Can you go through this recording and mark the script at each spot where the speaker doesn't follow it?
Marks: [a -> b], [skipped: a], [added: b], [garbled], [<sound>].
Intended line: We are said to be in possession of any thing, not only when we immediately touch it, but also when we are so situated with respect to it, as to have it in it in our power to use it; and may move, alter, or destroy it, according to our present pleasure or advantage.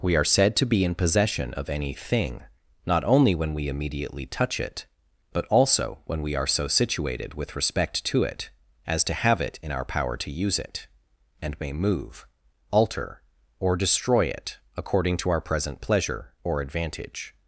We are said to be in possession of any thing, not only when we immediately touch it, but also when we are so situated with respect to it, as to have it in [skipped: it in] our power to use it; and may move, alter, or destroy it, according to our present pleasure or advantage.